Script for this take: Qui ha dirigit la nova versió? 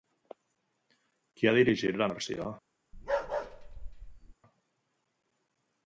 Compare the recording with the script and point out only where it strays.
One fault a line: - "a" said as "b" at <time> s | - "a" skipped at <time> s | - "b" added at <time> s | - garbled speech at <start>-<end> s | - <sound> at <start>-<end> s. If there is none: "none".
- "nova" skipped at 2.1 s
- bark at 2.9-4.3 s